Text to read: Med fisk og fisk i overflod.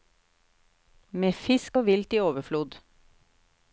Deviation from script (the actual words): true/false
true